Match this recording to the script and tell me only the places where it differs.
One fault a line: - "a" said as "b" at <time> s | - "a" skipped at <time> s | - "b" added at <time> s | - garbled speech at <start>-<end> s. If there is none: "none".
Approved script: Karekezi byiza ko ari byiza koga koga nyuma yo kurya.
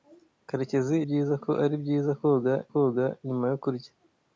none